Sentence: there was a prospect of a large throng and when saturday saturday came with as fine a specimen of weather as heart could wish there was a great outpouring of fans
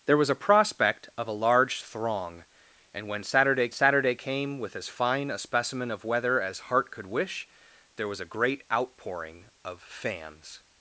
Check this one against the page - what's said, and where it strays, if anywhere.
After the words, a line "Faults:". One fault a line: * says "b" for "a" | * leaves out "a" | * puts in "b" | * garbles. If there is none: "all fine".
there was a prospect of a large throng and when saturday saturday came with as fine a specimen of weather as heart could wish there was a great outpouring of fans
Faults:
all fine